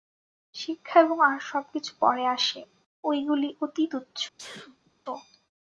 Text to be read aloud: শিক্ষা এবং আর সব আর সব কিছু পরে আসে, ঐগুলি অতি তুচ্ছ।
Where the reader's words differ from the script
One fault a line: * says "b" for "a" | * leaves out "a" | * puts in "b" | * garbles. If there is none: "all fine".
* leaves out "আর সব"